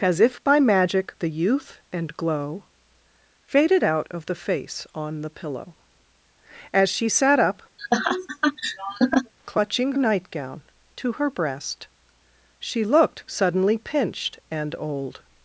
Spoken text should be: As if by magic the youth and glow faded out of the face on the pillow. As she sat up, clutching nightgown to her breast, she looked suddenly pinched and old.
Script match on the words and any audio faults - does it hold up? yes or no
no